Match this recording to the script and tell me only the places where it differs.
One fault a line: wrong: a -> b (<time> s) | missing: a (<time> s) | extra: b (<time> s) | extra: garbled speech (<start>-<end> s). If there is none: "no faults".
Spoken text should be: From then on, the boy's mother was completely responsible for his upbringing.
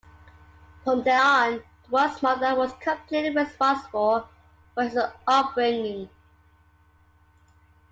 no faults